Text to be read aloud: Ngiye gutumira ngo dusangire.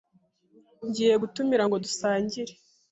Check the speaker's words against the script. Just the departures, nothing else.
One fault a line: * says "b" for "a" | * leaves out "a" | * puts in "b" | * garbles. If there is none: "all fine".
all fine